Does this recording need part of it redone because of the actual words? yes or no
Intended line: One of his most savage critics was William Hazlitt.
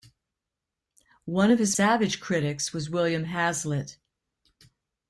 yes